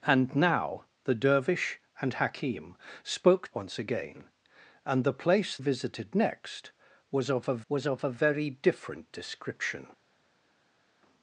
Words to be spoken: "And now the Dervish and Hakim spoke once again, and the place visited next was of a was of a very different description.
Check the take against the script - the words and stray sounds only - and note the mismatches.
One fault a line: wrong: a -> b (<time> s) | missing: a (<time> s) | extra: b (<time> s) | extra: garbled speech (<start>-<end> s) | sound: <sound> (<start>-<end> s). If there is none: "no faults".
no faults